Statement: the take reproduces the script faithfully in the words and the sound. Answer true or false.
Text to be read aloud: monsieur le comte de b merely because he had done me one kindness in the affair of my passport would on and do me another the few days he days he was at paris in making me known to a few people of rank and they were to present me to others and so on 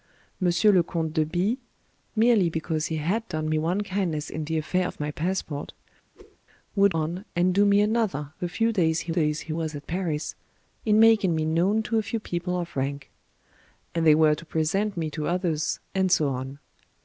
false